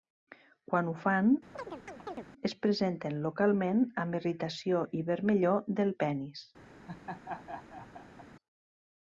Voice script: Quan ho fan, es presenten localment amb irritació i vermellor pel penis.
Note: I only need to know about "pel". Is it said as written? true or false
false